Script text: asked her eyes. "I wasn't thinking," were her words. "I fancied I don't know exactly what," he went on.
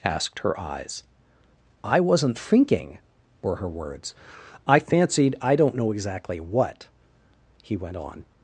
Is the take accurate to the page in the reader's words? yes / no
yes